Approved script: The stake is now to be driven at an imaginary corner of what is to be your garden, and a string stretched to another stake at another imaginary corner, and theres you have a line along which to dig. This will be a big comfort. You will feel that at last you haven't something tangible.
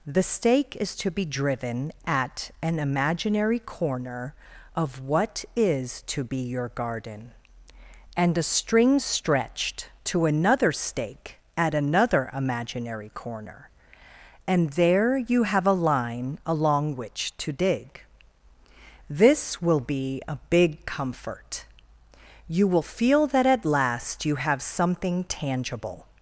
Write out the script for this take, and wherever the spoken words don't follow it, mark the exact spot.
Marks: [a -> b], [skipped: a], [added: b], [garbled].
The stake is [skipped: now] to be driven at an imaginary corner of what is to be your garden, and a string stretched to another stake at another imaginary corner, and [theres -> there] you have a line along which to dig. This will be a big comfort. You will feel that at last you [haven't -> have] something tangible.